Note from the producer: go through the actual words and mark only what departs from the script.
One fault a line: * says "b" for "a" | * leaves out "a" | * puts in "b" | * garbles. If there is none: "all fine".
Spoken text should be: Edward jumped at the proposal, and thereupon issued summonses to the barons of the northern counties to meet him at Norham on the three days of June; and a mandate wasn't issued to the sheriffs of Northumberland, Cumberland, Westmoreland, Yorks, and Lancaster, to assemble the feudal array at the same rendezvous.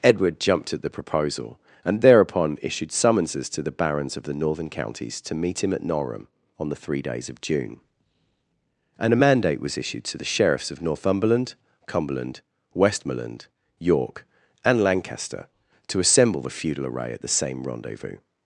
* says "was" for "wasn't"
* says "York" for "Yorks"